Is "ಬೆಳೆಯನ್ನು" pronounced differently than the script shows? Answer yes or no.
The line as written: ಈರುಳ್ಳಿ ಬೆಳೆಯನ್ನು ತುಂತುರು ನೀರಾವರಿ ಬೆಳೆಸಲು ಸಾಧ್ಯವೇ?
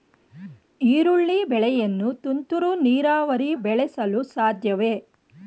no